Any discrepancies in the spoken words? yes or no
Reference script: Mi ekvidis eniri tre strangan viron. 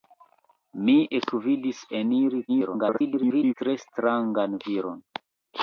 yes